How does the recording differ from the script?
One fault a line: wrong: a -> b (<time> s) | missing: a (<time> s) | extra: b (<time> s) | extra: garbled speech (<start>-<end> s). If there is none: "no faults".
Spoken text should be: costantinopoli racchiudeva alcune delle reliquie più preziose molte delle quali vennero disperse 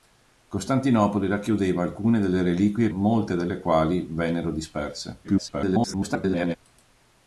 missing: più preziose (2.9 s)
extra: garbled speech (5.2-6.6 s)